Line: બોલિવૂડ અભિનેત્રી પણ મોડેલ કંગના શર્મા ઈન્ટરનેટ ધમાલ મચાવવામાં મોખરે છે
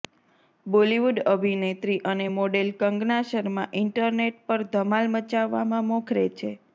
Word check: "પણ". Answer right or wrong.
wrong